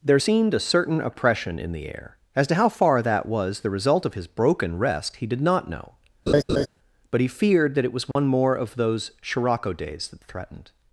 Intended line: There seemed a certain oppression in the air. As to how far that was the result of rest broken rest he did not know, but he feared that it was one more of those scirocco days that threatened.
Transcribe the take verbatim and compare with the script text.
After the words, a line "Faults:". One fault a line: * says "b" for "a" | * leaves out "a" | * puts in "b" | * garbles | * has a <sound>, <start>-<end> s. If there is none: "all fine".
There seemed a certain oppression in the air. As to how far that was the result of his broken rest he did not know, but he feared that it was one more of those scirocco days that threatened.
Faults:
* says "his" for "rest"
* has a laugh, 6.3-6.7 s
* has a dropout, 8.1-8.2 s